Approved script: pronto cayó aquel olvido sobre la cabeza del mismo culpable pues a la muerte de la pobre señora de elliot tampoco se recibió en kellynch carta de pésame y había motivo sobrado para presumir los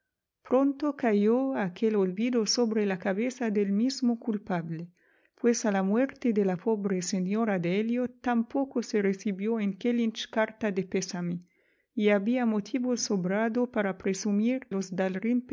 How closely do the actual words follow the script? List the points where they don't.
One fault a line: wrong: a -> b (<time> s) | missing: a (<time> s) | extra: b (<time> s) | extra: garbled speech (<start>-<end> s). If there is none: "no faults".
no faults